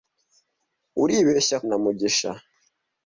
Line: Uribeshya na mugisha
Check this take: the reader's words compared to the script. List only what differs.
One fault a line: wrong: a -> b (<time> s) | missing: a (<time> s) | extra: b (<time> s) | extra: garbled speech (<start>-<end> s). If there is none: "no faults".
no faults